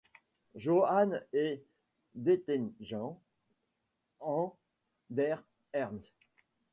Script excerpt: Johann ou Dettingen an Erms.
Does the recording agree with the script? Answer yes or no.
no